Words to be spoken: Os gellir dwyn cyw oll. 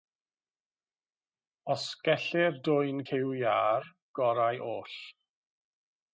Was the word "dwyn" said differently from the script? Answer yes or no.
no